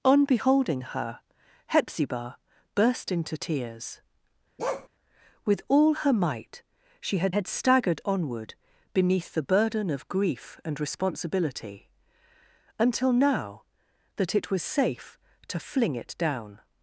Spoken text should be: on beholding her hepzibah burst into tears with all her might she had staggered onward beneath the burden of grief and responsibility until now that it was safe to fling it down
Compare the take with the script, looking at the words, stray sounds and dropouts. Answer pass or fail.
fail